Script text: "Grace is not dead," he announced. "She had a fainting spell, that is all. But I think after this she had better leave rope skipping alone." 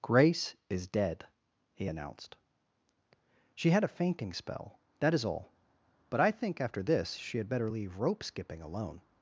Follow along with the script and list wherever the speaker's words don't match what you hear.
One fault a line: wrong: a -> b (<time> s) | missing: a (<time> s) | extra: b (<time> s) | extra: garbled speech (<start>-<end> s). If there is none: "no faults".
missing: not (0.9 s)